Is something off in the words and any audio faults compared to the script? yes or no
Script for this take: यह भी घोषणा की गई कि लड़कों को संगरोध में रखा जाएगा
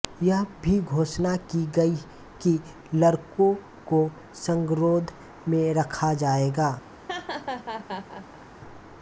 yes